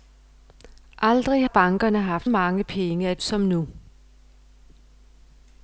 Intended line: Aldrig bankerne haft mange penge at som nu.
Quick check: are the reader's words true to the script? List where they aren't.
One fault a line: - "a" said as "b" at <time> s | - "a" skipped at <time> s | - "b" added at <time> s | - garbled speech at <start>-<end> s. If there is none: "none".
none